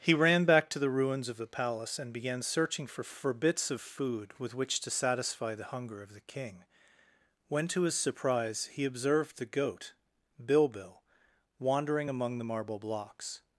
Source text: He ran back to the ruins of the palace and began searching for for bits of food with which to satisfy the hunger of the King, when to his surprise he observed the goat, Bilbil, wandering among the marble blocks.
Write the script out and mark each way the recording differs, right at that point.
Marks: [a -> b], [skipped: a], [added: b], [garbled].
He ran back to the ruins of the palace and began searching for for bits of food with which to satisfy the hunger of the King, when to his surprise he observed the goat, Bilbil, wandering among the marble blocks.